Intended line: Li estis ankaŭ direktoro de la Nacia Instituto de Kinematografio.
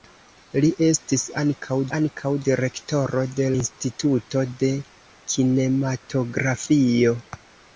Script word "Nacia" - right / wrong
wrong